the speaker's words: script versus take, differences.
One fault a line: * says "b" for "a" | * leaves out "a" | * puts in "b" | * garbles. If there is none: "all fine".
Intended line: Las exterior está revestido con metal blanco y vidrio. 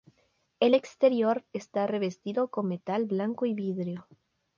* says "El" for "Las"